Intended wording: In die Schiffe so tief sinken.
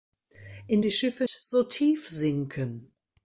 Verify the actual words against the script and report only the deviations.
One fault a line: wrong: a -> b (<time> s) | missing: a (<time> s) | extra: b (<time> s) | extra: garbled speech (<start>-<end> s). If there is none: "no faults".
no faults